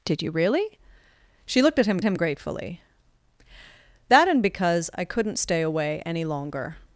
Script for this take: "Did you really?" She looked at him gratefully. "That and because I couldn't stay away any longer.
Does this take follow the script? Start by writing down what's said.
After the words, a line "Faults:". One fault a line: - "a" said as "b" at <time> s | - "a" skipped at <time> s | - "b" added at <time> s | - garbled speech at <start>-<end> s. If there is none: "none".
"Did you really?" She looked at him him gratefully. "That and because I couldn't stay away any longer.
Faults:
- "him" added at 2.0 s